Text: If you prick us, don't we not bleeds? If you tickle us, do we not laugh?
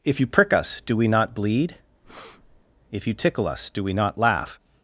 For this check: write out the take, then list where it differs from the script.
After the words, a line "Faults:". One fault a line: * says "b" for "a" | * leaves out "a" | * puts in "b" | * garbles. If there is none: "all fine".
If you prick us, do we not bleed? If you tickle us, do we not laugh?
Faults:
* says "do" for "don't"
* says "bleed" for "bleeds"